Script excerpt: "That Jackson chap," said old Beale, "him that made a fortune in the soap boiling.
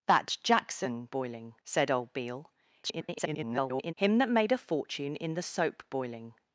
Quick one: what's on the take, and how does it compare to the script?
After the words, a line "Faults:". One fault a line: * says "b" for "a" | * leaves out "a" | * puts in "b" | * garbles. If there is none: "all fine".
"That Jackson boiling," said old Beale, [garbled] "him that made a fortune in the soap boiling.
Faults:
* says "boiling" for "chap"
* garbles